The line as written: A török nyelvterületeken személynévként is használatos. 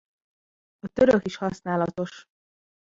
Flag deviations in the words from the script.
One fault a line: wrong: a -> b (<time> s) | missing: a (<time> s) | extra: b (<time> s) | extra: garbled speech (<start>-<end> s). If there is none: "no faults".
missing: nyelvterületeken személynévként (1.2 s)